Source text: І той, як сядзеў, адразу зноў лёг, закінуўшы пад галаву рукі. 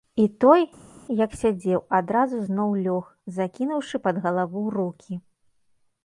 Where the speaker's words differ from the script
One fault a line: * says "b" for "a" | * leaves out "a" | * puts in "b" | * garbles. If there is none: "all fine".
all fine